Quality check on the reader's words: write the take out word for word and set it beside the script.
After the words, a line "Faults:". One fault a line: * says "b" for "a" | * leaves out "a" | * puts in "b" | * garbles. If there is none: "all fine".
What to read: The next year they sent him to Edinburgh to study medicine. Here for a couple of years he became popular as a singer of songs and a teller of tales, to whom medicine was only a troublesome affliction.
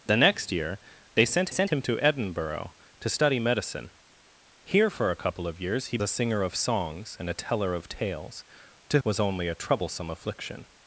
The next year they sent sent him to Edinburgh to study medicine. Here for a couple of years he a singer of songs and a teller of tales, to was only a troublesome affliction.
Faults:
* puts in "sent"
* leaves out "became popular as"
* leaves out "whom medicine"